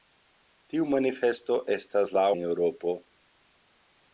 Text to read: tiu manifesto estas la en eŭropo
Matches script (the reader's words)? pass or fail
pass